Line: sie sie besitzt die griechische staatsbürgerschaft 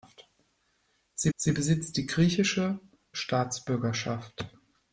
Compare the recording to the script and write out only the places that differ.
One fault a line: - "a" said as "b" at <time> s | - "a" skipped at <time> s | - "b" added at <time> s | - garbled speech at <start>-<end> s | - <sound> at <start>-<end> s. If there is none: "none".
none